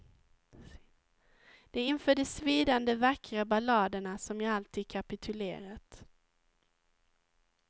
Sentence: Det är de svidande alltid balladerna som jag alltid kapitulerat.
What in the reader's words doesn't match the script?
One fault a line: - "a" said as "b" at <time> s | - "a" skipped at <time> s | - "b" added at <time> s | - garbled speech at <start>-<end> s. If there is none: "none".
- "inför" added at 1.9 s
- "alltid" said as "vackra" at 2.9 s